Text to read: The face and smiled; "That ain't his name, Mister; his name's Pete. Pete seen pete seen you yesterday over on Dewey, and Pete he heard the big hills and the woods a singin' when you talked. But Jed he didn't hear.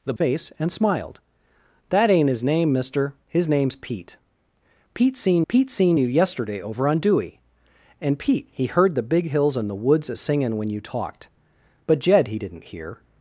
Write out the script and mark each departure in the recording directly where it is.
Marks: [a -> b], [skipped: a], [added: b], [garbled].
The face and smiled; "That ain't his name, Mister; his name's Pete. Pete seen pete seen you yesterday over on Dewey, and Pete he heard the big hills and the woods a singin' when you talked. But Jed he didn't hear.